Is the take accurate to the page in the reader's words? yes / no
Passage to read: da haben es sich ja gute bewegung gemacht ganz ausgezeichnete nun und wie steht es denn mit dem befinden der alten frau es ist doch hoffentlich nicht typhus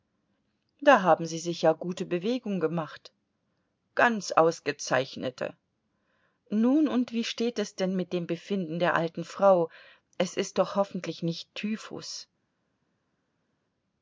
no